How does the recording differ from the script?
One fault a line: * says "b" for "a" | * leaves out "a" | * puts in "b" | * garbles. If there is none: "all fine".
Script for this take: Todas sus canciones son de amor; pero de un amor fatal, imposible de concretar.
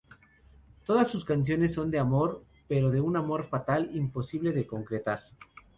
all fine